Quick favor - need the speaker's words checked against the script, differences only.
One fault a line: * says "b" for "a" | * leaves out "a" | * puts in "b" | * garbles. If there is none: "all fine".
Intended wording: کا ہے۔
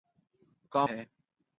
all fine